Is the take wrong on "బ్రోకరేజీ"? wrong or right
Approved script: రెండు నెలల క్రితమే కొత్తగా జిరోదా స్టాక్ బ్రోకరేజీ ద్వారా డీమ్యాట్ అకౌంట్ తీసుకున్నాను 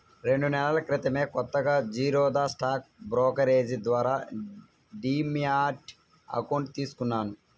right